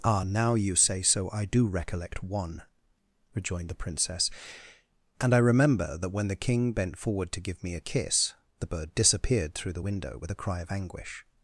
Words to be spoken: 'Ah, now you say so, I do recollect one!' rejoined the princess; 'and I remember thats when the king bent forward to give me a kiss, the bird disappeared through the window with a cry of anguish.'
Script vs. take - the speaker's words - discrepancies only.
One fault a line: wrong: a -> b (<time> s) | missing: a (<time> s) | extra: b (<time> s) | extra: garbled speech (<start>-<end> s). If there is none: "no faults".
wrong: thats -> that (6.0 s)